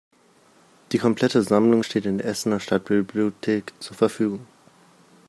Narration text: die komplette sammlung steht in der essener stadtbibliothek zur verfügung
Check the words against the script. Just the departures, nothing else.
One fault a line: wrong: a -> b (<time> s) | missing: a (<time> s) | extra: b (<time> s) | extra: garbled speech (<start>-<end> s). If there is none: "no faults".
no faults